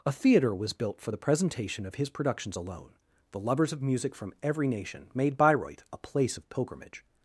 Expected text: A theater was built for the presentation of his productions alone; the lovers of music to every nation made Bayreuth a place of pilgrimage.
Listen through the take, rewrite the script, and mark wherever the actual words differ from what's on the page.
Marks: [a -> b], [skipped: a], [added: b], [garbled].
A theater was built for the presentation of his productions alone; the lovers of music [to -> from] every nation made Bayreuth a place of pilgrimage.